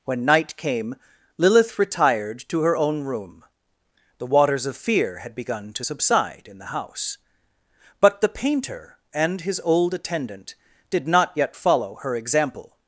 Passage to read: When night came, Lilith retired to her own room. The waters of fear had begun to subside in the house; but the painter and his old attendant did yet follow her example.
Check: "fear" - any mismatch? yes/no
no